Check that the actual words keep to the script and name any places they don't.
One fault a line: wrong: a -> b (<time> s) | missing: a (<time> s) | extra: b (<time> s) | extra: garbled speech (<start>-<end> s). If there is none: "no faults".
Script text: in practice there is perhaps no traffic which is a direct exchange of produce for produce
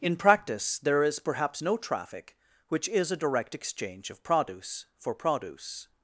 no faults